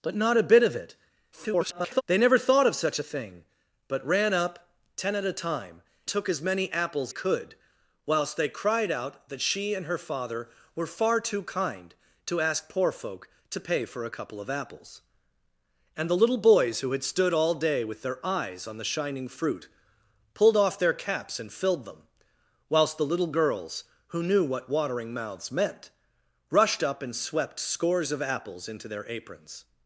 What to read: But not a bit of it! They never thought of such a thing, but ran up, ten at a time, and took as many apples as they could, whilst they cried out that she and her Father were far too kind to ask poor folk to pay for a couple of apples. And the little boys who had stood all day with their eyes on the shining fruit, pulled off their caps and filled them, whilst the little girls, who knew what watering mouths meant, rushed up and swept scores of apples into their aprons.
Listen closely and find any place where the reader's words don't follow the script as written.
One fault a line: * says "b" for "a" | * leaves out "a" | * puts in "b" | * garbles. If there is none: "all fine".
* garbles
* leaves out "and"
* leaves out "as they"